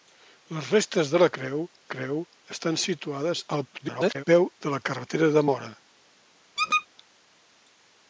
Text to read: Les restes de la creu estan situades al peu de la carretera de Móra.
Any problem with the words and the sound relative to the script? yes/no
yes